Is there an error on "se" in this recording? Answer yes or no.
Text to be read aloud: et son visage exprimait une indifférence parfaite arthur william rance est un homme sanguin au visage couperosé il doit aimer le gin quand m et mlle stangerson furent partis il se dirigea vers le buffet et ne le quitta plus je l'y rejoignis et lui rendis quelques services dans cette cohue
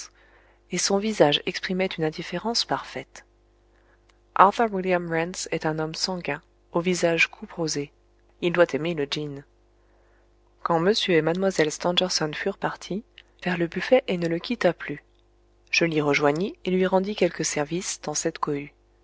yes